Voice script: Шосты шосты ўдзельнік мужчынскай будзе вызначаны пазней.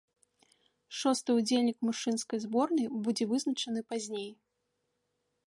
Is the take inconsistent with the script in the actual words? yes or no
yes